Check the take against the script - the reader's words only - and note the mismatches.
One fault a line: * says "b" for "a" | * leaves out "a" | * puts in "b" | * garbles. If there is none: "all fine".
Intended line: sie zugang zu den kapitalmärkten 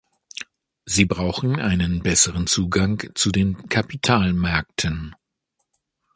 * puts in "brauchen einen besseren"